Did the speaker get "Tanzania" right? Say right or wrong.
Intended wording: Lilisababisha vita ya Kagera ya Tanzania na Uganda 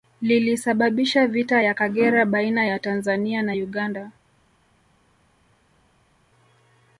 right